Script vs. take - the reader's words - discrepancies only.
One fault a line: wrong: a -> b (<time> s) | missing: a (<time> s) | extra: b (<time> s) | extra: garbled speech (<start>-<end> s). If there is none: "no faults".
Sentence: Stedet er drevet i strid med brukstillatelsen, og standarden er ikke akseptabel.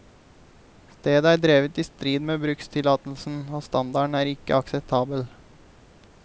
no faults